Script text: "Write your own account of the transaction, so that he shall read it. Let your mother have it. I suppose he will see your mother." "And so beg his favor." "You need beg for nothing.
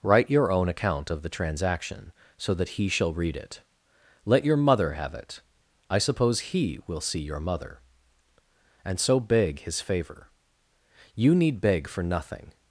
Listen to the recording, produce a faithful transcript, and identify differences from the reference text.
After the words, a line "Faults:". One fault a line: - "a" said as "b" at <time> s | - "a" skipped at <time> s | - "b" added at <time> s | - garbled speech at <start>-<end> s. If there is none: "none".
"Write your own account of the transaction, so that he shall read it. Let your mother have it. I suppose he will see your mother." "And so beg his favor." "You need beg for nothing.
Faults:
none